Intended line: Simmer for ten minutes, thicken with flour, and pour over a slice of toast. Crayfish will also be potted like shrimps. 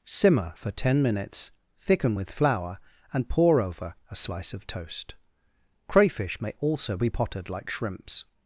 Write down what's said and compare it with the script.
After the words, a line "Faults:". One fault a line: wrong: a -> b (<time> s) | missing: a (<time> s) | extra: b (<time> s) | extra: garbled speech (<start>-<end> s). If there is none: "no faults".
Simmer for ten minutes, thicken with flour, and pour over a slice of toast. Crayfish may also be potted like shrimps.
Faults:
wrong: will -> may (6.4 s)